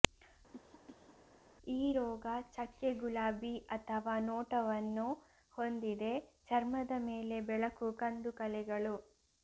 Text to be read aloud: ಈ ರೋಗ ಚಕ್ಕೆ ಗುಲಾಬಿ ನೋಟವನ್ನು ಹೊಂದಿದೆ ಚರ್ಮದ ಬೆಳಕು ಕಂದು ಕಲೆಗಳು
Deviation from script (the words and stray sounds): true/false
true